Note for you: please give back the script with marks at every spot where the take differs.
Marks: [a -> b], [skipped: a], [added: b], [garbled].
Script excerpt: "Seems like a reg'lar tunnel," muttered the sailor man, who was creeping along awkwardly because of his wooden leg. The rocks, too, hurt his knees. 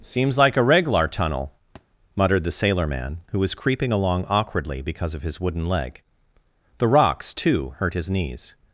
"Seems like a reg'lar tunnel," muttered the sailor man, who was creeping along awkwardly because of his wooden leg. The rocks, too, hurt his knees.